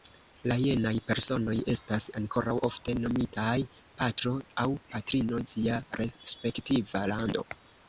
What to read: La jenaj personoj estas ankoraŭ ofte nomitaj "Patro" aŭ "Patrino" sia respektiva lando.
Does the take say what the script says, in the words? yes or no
yes